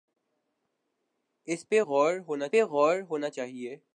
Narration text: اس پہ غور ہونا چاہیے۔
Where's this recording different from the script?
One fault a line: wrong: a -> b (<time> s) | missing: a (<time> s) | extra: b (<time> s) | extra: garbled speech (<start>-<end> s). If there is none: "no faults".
extra: پہ غور ہونا (2.5 s)